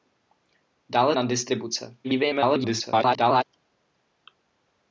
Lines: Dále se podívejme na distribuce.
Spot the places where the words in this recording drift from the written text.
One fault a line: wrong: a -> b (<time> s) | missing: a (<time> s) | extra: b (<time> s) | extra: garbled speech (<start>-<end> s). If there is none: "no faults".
missing: se podívejme (1.1 s)
extra: garbled speech (2.0-3.4 s)